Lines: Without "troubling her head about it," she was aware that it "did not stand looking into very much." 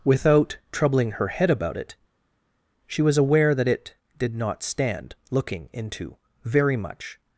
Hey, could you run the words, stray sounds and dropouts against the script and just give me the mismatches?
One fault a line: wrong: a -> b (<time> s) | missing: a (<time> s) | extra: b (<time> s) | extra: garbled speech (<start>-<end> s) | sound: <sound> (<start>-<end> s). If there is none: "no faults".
no faults